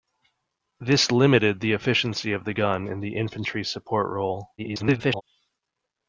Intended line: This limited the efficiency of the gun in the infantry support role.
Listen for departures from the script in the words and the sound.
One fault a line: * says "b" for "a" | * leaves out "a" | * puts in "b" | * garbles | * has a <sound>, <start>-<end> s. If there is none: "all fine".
* garbles